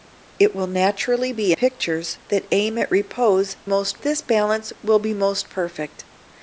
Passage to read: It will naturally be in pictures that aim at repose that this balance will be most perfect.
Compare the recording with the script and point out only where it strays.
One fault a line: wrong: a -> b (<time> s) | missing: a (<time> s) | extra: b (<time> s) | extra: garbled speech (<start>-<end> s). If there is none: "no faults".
missing: in (1.5 s)
wrong: that -> most (3.6 s)